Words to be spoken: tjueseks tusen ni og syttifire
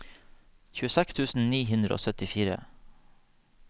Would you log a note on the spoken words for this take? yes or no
yes